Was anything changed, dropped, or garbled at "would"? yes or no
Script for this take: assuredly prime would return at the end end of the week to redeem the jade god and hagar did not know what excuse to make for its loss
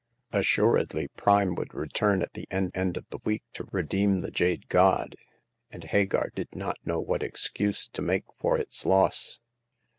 no